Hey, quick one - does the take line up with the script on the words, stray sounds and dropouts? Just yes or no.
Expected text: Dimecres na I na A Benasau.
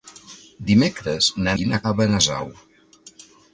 yes